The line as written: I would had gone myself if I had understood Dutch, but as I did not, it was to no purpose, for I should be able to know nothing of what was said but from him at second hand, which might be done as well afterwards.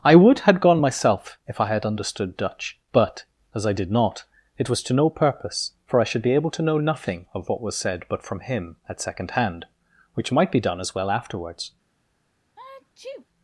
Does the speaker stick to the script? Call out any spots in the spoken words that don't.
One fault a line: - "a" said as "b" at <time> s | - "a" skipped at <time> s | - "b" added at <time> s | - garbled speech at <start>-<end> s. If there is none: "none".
none